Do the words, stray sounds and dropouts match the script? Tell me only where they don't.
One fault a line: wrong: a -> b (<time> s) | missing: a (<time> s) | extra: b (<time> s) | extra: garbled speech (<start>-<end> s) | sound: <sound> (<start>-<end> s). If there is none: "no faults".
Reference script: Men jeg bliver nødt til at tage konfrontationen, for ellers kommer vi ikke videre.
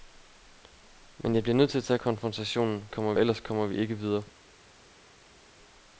wrong: for -> kommer (2.9 s)